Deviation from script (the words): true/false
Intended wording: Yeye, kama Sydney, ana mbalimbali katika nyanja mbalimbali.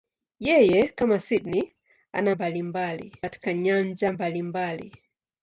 false